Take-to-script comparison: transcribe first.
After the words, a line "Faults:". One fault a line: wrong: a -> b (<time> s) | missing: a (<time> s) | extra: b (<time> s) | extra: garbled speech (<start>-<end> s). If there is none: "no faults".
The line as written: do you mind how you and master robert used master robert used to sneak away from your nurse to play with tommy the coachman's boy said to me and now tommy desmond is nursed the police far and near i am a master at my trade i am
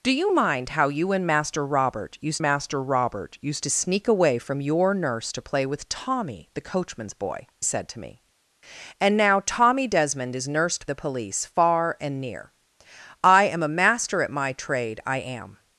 do you mind how you and master robert used master robert used to sneak away from your nurse to play with tommy the coachman's boy said to me and now tommy desmond is nursed the police far and near i am a master at my trade i am
Faults:
no faults